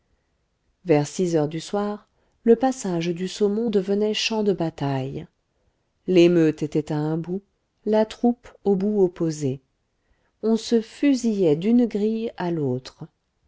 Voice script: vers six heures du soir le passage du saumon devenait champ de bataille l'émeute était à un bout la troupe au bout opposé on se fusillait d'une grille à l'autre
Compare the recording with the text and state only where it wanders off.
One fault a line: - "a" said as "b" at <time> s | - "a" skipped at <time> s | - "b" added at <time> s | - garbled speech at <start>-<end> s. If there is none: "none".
none